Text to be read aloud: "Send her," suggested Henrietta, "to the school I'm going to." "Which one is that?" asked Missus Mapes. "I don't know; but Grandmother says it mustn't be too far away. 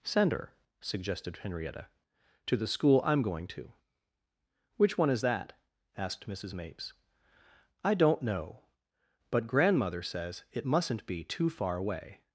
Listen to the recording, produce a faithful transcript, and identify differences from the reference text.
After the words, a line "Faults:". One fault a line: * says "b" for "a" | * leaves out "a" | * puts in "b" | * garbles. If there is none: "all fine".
"Send her," suggested Henrietta, "to the school I'm going to." "Which one is that?" asked Missus Mapes. "I don't know; but Grandmother says it mustn't be too far away.
Faults:
all fine